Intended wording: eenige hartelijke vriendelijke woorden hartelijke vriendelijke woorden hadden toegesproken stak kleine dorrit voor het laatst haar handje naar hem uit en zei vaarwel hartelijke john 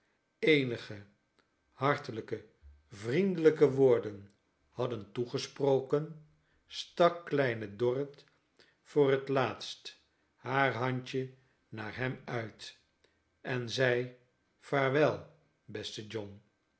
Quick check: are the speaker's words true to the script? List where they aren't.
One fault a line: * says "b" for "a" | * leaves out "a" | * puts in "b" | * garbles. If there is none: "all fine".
* leaves out "hartelijke vriendelijke woorden"
* says "beste" for "hartelijke"